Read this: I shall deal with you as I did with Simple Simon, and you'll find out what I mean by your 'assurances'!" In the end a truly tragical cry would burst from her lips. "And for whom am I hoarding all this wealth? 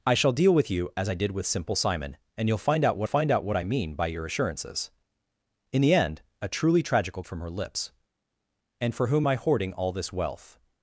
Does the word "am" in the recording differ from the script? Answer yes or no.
yes